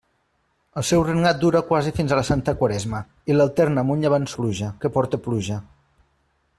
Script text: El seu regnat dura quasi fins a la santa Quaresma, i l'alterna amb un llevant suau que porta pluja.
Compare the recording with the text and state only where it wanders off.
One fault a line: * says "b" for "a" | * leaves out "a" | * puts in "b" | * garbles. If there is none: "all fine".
* says "pluja" for "suau"